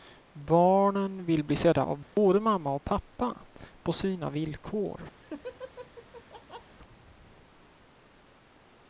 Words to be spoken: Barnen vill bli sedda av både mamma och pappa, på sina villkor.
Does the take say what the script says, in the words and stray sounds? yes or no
no